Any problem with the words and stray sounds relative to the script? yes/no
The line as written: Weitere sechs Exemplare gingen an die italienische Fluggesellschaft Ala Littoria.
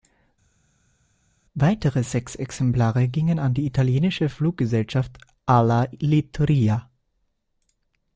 no